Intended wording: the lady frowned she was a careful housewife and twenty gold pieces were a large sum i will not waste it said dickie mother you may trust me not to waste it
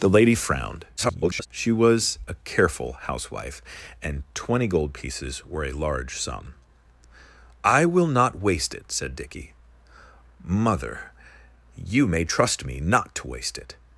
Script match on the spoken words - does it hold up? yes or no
no